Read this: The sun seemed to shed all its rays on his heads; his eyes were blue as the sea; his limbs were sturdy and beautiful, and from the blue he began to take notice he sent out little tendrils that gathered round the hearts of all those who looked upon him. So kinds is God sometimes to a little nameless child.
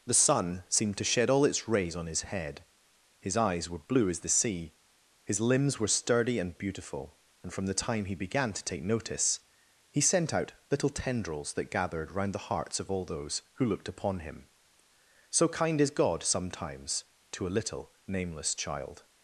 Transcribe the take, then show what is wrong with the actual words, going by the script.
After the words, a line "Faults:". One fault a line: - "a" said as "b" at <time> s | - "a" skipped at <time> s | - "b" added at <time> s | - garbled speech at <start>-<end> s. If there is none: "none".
The sun seemed to shed all its rays on his head; his eyes were blue as the sea; his limbs were sturdy and beautiful, and from the time he began to take notice he sent out little tendrils that gathered round the hearts of all those who looked upon him. So kind is God sometimes to a little nameless child.
Faults:
- "heads" said as "head" at 2.2 s
- "blue" said as "time" at 7.8 s
- "kinds" said as "kind" at 15.5 s